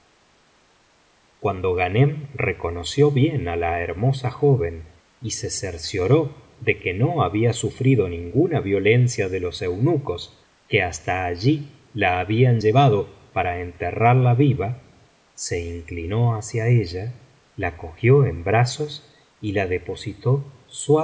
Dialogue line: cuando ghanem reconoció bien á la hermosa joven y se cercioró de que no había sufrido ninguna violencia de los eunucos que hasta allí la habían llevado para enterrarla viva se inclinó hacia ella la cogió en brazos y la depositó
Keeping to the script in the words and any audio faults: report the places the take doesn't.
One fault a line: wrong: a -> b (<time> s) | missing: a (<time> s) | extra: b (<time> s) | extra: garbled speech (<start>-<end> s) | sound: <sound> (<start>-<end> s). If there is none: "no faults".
no faults